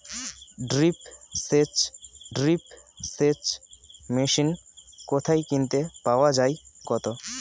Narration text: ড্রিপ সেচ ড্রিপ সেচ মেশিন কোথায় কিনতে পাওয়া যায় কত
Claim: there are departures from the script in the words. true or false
false